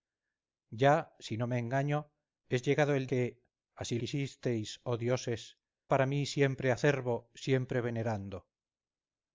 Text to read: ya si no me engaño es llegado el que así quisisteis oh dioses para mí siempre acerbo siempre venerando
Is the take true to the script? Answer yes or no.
yes